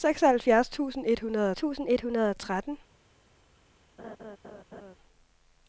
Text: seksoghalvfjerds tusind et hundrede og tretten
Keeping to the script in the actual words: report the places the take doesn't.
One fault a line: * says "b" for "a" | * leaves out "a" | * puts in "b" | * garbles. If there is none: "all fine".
* puts in "tusind et hundrede"